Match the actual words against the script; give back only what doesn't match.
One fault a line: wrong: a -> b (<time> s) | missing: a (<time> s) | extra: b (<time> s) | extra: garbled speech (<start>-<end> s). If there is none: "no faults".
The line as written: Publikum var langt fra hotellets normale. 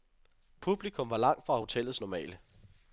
no faults